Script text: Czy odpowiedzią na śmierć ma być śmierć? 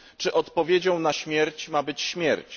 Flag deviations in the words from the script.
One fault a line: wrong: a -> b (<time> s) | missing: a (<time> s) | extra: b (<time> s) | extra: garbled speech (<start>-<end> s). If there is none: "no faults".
no faults